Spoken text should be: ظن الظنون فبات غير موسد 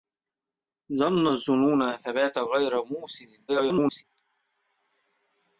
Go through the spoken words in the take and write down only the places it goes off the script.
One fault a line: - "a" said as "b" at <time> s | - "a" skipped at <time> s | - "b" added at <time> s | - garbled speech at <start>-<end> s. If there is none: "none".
- garbled speech at 3.5-4.0 s